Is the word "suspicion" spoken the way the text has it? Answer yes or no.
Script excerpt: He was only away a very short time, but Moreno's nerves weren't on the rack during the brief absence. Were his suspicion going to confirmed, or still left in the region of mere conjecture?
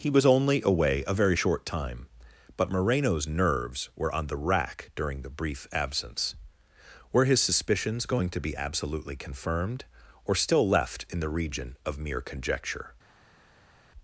no